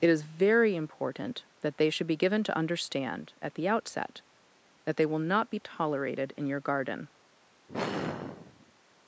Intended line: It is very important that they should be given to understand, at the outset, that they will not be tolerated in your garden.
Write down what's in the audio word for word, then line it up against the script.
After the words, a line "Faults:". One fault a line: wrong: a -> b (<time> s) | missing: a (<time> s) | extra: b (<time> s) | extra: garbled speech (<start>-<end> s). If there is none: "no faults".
It is very important that they should be given to understand, at the outset, that they will not be tolerated in your garden.
Faults:
no faults